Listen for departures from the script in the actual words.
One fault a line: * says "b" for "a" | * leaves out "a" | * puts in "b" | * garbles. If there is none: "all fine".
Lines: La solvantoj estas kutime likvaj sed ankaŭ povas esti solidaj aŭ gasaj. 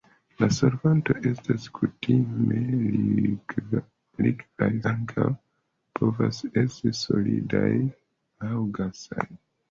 * leaves out "sed"